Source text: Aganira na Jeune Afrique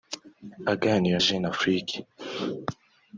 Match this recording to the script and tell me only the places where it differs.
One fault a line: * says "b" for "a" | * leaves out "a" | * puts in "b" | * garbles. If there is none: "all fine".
* leaves out "na"